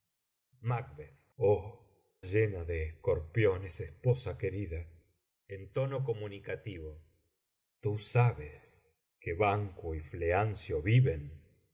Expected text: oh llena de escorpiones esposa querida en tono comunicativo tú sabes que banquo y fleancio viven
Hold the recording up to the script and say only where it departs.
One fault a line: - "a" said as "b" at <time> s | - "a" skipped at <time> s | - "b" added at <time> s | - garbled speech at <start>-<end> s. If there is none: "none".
none